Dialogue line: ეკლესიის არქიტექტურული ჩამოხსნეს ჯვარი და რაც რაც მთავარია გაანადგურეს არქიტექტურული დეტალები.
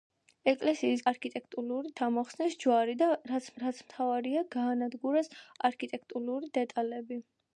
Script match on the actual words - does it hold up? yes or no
yes